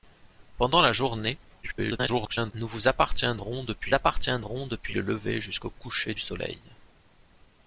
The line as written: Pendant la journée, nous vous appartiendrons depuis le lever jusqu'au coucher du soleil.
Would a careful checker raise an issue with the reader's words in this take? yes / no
yes